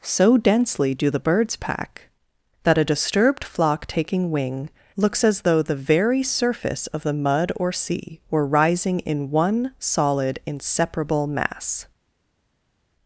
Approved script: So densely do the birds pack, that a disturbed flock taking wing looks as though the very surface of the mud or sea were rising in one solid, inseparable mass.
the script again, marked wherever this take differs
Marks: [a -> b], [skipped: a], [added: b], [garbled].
So densely do the birds pack, that a disturbed flock taking wing looks as though the very surface of the mud or sea were rising in one solid, inseparable mass.